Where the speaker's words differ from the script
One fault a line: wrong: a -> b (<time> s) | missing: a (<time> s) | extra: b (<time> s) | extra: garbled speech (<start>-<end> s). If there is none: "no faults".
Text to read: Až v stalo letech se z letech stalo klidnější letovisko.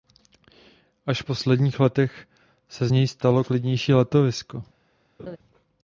wrong: stalo -> posledních (1.2 s)
wrong: letech -> něj (2.9 s)